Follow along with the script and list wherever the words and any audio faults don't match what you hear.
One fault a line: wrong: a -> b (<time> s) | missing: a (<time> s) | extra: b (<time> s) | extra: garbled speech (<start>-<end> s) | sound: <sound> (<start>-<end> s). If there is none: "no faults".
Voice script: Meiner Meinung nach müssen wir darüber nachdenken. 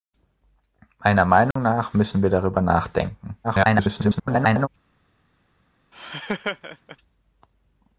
sound: dropout (1.5-1.6 s)
extra: garbled speech (3.4-4.7 s)
sound: laugh (5.9-7.0 s)